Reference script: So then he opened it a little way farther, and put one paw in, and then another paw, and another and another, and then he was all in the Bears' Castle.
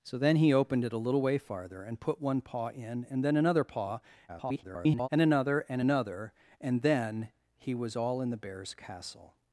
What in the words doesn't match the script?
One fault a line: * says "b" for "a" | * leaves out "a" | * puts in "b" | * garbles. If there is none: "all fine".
* garbles